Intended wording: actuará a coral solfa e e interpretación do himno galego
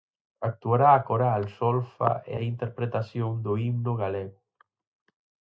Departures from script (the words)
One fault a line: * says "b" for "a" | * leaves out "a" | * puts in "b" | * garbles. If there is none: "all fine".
all fine